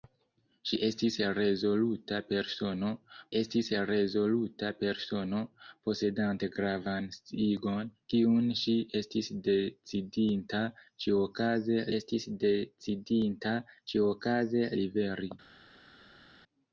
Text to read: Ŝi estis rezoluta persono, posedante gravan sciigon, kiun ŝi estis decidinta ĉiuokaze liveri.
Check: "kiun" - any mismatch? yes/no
no